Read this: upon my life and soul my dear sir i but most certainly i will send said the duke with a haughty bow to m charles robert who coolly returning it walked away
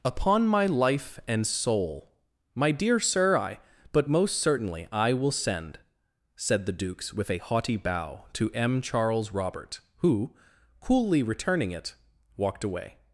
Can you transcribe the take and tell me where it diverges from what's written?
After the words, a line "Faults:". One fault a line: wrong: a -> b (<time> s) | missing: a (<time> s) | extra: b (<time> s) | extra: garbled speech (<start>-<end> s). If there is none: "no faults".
upon my life and soul my dear sir i but most certainly i will send said the dukes with a haughty bow to m charles robert who coolly returning it walked away
Faults:
wrong: duke -> dukes (6.7 s)